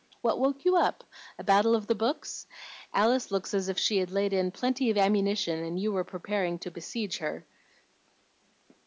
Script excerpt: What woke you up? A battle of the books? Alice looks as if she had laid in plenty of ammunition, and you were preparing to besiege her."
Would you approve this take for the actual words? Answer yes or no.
yes